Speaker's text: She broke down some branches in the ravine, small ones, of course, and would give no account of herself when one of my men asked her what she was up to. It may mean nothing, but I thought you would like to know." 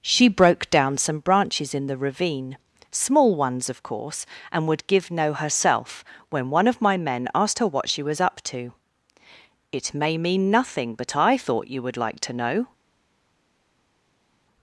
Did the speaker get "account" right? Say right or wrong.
wrong